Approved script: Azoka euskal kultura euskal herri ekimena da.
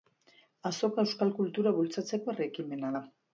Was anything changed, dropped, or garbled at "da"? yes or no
no